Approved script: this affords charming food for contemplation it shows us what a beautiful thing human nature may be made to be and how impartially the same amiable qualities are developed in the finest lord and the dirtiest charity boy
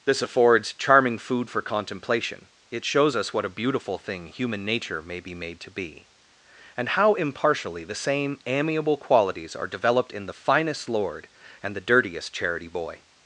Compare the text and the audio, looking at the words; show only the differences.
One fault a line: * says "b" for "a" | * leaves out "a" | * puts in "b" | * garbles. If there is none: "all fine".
all fine